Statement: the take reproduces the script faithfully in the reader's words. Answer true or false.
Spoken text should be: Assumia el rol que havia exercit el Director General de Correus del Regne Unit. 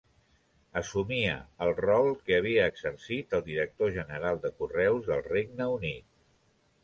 true